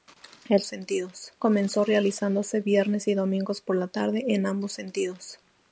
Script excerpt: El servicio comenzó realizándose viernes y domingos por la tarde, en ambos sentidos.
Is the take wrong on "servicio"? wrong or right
wrong